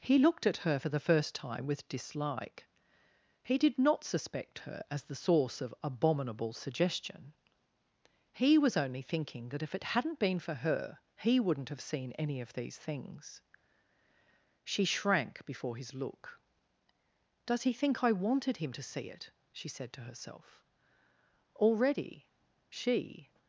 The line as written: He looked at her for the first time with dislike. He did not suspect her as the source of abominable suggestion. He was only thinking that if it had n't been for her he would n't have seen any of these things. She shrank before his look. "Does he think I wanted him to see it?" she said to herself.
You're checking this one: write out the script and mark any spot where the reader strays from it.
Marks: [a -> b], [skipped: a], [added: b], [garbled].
He looked at her for the first time with dislike. He did not suspect her as the source of abominable suggestion. He was only thinking that if it had n't been for her he would n't have seen any of these things. She shrank before his look. "Does he think I wanted him to see it?" she said to herself. [added: Already she]